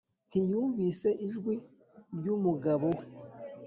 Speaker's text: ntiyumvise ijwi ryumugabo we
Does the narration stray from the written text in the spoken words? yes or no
no